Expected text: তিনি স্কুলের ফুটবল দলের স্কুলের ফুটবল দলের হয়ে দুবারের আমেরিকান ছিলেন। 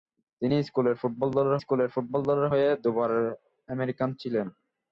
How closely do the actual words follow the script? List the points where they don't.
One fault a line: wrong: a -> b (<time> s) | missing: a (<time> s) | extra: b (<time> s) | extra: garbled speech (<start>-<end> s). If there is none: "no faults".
no faults